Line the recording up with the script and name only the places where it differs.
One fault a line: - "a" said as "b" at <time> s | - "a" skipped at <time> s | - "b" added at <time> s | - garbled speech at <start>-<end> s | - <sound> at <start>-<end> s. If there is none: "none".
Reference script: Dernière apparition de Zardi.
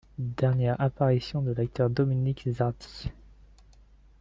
- "l'acteur Dominique" added at 1.5 s